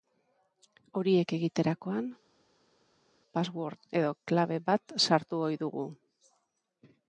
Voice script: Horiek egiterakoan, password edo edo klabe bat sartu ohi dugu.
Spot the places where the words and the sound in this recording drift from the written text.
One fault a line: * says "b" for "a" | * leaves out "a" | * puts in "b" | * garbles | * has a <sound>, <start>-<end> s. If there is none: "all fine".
* leaves out "edo"